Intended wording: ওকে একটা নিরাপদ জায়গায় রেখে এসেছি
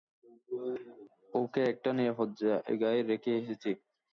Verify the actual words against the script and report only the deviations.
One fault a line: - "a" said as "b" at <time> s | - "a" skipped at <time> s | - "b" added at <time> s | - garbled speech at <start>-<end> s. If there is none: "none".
none